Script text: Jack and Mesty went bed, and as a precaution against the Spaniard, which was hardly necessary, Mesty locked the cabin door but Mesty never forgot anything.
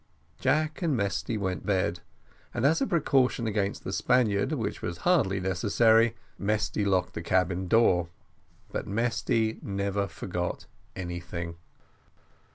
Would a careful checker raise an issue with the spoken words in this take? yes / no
no